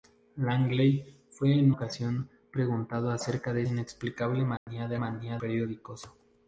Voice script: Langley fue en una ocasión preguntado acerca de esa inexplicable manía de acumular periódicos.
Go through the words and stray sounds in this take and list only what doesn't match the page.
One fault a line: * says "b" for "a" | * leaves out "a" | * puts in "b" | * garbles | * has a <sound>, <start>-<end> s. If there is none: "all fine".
* leaves out "una"
* leaves out "esa"
* has a dropout, 4.6-4.7 s
* says "manía" for "acumular"